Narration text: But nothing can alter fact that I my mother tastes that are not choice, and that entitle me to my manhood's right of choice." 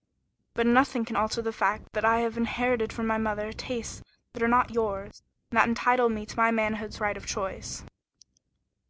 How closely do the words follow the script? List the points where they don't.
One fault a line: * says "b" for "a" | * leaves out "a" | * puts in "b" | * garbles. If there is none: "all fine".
* puts in "the"
* puts in "have inherited from"
* says "yours" for "choice"